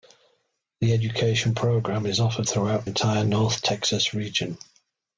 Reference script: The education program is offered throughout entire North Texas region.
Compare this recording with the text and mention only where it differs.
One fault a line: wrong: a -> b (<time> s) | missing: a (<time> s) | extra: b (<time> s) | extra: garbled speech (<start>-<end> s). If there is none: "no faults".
no faults